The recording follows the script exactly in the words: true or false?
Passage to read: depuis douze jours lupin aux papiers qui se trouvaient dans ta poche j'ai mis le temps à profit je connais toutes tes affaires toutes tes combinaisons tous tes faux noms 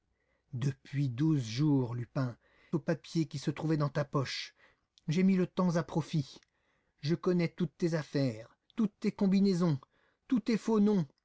true